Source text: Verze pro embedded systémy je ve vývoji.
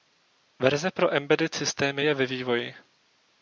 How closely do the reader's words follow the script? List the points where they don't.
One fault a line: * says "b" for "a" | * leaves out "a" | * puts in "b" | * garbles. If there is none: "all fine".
all fine